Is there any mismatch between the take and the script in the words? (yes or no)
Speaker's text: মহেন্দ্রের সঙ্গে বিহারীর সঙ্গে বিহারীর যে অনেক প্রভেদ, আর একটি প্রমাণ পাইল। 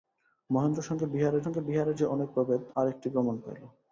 no